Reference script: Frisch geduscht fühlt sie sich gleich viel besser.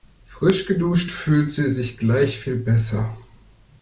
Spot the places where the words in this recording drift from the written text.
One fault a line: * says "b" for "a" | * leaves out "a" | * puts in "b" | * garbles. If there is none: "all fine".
all fine